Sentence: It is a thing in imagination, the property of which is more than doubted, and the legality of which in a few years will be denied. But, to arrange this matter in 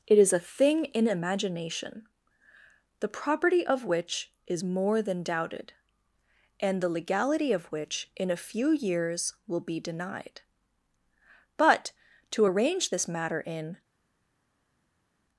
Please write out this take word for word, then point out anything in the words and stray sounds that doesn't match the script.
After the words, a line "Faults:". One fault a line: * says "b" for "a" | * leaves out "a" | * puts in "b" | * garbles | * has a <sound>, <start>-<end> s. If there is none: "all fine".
It is a thing in imagination, the property of which is more than doubted, and the legality of which in a few years will be denied. But, to arrange this matter in
Faults:
all fine